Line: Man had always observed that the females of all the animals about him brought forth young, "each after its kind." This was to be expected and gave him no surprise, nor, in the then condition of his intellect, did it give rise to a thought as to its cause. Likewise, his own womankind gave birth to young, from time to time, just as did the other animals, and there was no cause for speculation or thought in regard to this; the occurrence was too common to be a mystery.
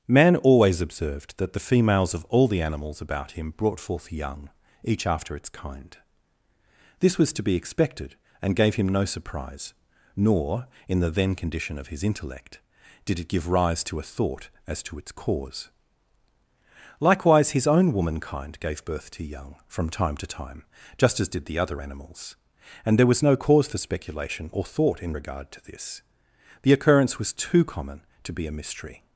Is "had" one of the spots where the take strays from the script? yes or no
yes